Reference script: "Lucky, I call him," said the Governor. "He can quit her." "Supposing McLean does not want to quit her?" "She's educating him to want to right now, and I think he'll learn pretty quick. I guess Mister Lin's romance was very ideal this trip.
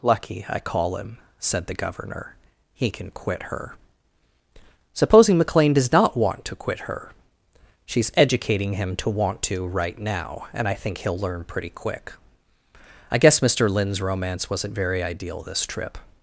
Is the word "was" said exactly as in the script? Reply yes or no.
no